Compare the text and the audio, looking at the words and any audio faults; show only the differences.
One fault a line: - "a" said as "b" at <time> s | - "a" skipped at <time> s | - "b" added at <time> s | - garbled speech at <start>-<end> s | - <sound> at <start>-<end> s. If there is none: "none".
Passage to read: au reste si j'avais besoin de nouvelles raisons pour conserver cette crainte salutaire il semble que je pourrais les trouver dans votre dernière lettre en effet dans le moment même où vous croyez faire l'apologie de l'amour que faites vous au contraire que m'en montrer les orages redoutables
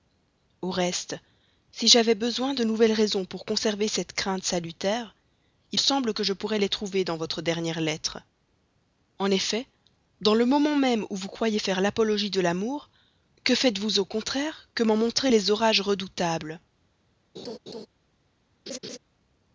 - laugh at 17.4-17.9 s
- laugh at 18.7-19.0 s